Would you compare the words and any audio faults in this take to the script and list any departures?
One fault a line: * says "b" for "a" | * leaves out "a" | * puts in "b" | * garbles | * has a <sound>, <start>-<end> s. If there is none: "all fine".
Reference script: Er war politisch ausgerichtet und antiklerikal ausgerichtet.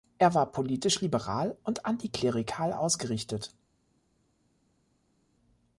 * says "liberal" for "ausgerichtet"